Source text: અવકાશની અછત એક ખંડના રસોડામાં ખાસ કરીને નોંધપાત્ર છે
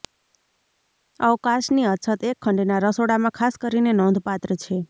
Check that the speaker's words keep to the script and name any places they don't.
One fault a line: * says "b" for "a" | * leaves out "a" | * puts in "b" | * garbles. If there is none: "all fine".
all fine